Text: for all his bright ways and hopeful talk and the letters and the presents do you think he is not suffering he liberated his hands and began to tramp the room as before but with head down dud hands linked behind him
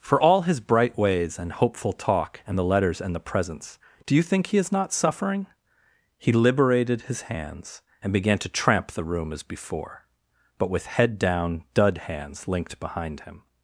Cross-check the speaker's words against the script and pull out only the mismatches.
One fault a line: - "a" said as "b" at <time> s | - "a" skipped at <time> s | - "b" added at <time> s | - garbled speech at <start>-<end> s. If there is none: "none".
none